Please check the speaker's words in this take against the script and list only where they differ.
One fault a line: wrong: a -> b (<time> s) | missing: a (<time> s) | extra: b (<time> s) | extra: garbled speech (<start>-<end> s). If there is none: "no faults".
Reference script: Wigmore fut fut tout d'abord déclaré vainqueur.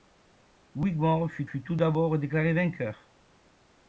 no faults